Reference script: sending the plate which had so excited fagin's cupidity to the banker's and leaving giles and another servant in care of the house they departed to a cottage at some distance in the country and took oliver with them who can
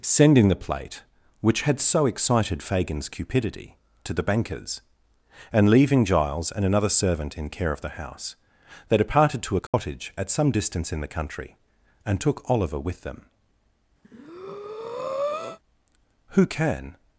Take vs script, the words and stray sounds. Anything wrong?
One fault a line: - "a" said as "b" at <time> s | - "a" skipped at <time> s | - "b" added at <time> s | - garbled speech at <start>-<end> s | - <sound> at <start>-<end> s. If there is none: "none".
- dropout at 9.7-9.7 s
- breath at 14.0-15.6 s